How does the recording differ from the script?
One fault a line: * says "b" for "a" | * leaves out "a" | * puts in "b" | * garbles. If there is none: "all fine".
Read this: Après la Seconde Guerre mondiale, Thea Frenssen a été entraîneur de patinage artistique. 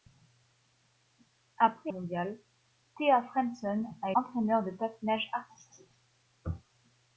* leaves out "la Seconde Guerre"
* leaves out "été"